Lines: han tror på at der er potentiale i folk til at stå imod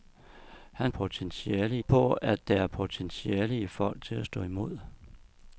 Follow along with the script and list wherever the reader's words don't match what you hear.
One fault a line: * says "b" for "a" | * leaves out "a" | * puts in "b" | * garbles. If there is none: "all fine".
* says "potentiale" for "tror"